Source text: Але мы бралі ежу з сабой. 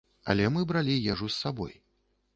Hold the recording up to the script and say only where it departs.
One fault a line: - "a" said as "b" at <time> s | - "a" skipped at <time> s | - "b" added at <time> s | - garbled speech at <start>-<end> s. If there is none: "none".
none